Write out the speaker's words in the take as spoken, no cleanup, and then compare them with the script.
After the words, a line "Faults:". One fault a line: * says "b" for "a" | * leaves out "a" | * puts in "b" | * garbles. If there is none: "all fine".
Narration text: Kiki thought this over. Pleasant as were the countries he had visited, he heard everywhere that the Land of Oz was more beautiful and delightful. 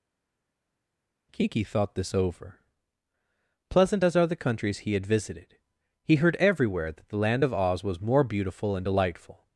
Kiki thought this over. Pleasant as are the countries he had visited, he heard everywhere that the Land of Oz was more beautiful and delightful.
Faults:
* says "are" for "were"